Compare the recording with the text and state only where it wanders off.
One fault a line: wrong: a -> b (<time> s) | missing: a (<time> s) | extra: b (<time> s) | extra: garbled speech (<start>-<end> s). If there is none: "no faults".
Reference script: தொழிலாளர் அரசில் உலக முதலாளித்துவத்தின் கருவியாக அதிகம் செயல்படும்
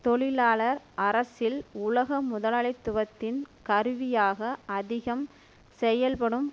no faults